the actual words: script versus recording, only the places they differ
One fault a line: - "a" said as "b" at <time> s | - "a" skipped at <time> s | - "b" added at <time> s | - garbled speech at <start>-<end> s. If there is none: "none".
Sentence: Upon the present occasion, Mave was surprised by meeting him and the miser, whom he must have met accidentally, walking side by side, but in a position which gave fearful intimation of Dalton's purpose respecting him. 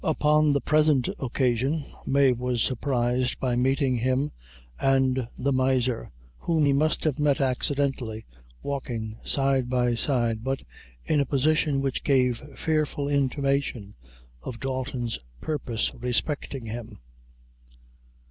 none